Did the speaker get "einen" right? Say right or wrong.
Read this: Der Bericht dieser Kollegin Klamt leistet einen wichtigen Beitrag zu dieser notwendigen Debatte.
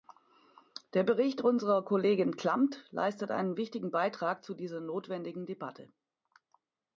right